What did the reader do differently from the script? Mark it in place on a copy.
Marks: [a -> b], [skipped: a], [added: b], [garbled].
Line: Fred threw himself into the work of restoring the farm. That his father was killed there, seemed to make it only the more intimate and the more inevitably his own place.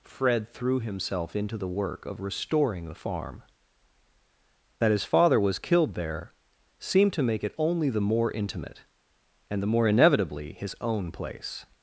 Fred threw himself into the work of restoring the farm. That his father was killed there, seemed to make it only the more intimate and the more inevitably his own place.